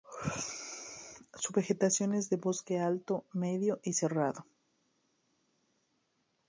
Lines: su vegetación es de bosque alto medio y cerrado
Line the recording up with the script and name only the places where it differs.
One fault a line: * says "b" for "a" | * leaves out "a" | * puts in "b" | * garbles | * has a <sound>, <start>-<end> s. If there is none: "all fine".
all fine